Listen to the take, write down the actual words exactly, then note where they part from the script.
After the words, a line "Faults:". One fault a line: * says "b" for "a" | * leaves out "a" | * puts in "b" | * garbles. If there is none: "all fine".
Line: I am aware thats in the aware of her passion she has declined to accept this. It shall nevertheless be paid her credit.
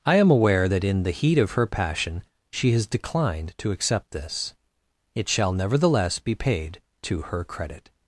I am aware that in the heat of her passion she has declined to accept this. It shall nevertheless be paid to her credit.
Faults:
* says "that" for "thats"
* says "heat" for "aware"
* puts in "to"